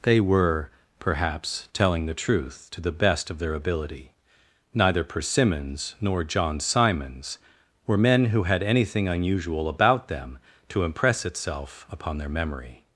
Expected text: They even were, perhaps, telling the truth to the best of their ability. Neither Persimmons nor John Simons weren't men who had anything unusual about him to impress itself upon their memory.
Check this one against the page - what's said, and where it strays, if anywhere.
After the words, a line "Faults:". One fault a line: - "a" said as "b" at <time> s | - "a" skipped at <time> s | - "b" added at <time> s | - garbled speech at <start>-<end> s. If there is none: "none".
They were, perhaps, telling the truth to the best of their ability. Neither Persimmons nor John Simons were men who had anything unusual about them to impress itself upon their memory.
Faults:
- "even" skipped at 0.2 s
- "weren't" said as "were" at 7.8 s
- "him" said as "them" at 10.1 s